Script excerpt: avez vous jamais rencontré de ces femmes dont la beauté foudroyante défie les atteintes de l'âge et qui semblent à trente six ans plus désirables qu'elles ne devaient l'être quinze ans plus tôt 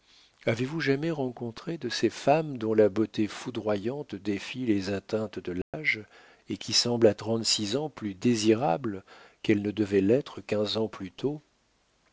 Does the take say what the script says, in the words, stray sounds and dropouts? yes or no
no